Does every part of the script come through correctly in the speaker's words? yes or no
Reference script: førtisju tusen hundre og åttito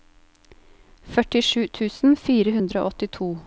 no